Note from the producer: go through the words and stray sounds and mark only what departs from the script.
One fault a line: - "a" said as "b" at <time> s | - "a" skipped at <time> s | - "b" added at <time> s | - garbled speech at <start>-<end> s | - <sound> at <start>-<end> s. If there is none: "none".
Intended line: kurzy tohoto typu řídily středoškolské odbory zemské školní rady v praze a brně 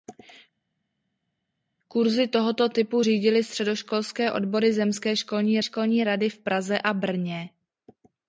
- "školní" added at 5.6 s